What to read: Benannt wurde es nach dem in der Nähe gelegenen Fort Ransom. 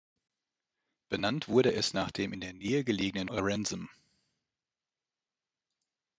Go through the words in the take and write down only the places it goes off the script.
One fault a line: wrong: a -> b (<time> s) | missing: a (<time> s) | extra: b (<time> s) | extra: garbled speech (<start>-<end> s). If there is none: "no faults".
missing: Fort (3.3 s)